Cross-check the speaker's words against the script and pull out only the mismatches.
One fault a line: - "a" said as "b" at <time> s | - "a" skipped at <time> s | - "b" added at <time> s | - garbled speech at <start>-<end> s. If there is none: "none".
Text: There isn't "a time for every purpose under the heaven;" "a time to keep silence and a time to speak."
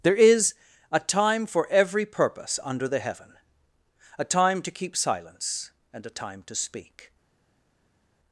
- "isn't" said as "is" at 0.1 s